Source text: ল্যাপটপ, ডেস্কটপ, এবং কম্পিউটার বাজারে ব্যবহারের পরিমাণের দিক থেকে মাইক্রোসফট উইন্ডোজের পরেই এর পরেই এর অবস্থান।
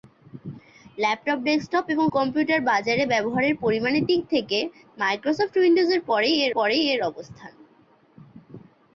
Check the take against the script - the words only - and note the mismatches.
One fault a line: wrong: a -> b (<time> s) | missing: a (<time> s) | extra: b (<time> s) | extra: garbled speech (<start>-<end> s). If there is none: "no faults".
no faults